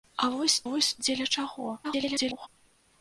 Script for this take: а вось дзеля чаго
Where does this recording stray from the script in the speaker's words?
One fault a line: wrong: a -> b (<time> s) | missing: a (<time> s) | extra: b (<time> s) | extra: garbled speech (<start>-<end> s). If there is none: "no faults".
extra: вось (0.7 s)
extra: garbled speech (1.8-2.5 s)